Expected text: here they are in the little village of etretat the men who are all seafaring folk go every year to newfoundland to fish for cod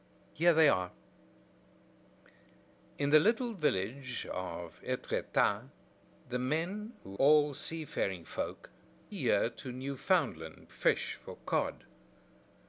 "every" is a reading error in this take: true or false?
true